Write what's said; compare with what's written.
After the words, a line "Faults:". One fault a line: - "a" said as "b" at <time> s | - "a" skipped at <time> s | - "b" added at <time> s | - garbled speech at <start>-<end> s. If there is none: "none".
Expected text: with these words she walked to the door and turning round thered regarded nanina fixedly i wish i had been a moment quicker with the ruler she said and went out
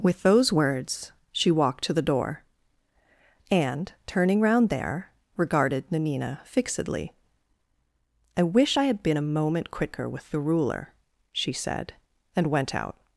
with those words she walked to the door and turning round there regarded nanina fixedly i wish i had been a moment quicker with the ruler she said and went out
Faults:
- "these" said as "those" at 0.2 s
- "thered" said as "there" at 4.7 s